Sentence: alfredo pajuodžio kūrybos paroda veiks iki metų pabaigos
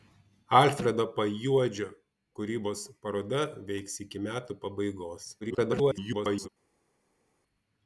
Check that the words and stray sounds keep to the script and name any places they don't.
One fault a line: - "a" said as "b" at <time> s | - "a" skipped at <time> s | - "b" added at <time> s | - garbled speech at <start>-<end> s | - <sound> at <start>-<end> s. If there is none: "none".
- garbled speech at 5.4-6.5 s